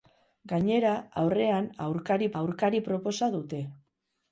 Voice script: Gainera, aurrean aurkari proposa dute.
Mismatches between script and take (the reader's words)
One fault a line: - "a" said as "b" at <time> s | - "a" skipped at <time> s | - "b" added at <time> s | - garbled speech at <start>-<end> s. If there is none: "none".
- "aurkari" added at 2.4 s